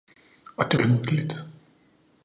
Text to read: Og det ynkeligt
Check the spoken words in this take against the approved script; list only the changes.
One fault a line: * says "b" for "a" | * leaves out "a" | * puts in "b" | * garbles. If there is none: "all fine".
all fine